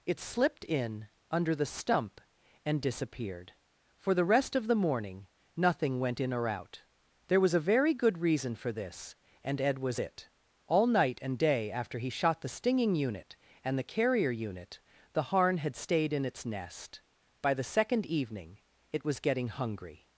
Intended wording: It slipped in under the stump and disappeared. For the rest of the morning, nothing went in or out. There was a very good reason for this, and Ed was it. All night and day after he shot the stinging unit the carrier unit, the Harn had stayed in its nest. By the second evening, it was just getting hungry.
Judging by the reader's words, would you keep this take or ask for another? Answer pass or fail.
fail